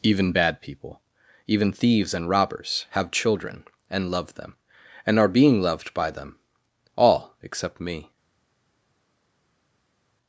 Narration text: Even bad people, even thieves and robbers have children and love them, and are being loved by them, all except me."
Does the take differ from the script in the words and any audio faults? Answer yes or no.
no